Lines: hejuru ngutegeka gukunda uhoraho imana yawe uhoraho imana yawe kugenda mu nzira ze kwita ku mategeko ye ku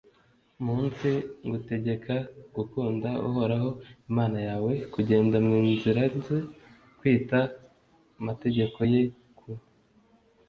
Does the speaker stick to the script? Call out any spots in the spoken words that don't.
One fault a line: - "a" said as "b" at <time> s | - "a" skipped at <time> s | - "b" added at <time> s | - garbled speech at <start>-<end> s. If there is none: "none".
- "hejuru" said as "munsi" at 0.7 s
- "uhoraho imana yawe" skipped at 4.7 s